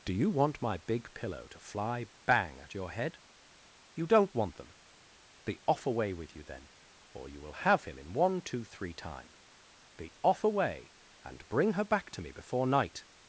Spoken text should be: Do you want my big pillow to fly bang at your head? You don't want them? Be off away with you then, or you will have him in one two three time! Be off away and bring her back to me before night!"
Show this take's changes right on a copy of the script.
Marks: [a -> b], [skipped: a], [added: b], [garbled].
Do you want my big pillow to fly bang at your head? You don't want them? Be off away with you then, or you will have him in one two three time! Be off away and bring her back to me before night!"